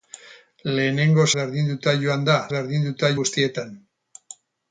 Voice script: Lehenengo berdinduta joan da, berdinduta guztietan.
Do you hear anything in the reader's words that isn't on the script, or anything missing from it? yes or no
no